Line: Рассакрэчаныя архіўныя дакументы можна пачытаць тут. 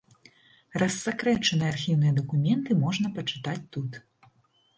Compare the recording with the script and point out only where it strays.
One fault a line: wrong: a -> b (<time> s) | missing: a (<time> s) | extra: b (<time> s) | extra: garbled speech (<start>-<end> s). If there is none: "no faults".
no faults